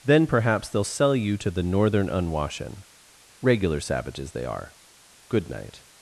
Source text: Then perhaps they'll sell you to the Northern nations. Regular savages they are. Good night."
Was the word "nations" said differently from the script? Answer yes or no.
yes